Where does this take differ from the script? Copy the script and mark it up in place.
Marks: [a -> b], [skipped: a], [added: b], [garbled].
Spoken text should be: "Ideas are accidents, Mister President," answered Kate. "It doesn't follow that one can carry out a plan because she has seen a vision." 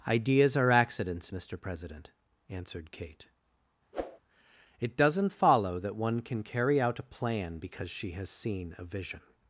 "Ideas are accidents, Mister President," answered Kate. "It doesn't follow that one can carry out a plan because she has seen a vision."